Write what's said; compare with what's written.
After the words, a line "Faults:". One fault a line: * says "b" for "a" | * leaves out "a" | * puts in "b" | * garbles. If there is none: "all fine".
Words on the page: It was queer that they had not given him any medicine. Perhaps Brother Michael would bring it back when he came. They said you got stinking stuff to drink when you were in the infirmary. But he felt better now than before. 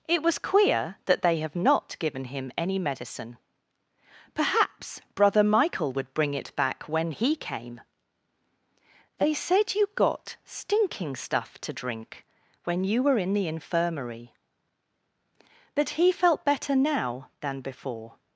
It was queer that they have not given him any medicine. Perhaps Brother Michael would bring it back when he came. They said you got stinking stuff to drink when you were in the infirmary. But he felt better now than before.
Faults:
* says "have" for "had"